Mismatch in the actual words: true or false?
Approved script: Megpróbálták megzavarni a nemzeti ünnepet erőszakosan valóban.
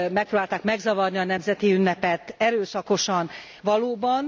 false